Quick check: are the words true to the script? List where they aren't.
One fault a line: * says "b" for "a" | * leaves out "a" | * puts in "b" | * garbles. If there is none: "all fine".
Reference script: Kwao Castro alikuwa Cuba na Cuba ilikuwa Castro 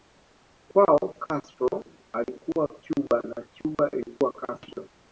all fine